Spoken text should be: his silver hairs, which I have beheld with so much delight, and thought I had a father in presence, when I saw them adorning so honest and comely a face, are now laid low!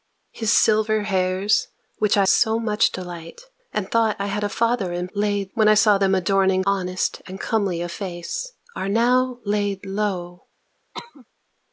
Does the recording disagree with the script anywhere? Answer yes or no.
yes